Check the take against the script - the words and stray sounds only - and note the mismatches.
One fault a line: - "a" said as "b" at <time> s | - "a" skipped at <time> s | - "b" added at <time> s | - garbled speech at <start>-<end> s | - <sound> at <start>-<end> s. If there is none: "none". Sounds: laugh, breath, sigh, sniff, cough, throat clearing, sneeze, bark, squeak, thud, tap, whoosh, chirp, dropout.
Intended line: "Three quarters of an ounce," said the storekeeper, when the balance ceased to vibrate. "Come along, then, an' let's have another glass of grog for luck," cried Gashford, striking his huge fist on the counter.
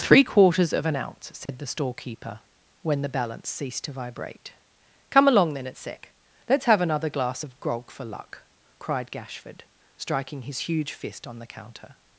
- dropout at 1.5-1.5 s
- "an" said as "at sec" at 5.7 s